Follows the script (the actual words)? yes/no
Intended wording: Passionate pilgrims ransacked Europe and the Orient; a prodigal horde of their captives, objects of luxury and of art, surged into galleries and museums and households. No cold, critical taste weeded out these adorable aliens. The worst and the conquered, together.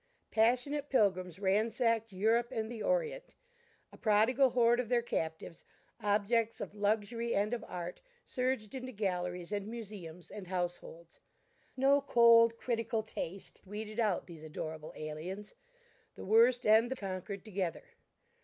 yes